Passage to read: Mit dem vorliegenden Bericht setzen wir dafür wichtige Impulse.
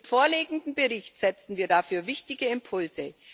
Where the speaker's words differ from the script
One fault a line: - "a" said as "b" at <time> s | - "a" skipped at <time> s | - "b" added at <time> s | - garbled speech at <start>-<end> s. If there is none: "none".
- "dem" skipped at 0.1 s